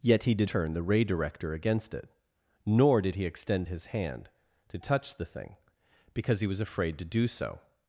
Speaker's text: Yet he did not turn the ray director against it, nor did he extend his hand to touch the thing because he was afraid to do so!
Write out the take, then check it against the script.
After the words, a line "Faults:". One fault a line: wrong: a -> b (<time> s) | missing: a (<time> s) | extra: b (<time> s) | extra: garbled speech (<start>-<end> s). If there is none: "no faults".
Yet he did turn the ray director against it, nor did he extend his hand to touch the thing because he was afraid to do so!
Faults:
missing: not (0.5 s)